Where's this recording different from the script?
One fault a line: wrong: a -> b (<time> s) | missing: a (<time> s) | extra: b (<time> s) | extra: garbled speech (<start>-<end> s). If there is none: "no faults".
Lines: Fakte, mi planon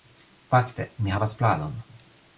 extra: havas (1.2 s)